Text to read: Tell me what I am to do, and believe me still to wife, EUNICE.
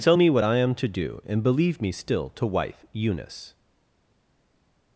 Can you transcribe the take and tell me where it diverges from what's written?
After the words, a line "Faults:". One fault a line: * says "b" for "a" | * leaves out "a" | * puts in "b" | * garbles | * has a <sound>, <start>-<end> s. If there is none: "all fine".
Tell me what I am to do, and believe me still to wife, EUNICE.
Faults:
all fine